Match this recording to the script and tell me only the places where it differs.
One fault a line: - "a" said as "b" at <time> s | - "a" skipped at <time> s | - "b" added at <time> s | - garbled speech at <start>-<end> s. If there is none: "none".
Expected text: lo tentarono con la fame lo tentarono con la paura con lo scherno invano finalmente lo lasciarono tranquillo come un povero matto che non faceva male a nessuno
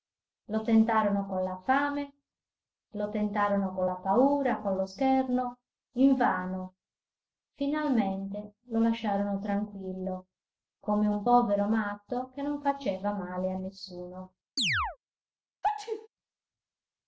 none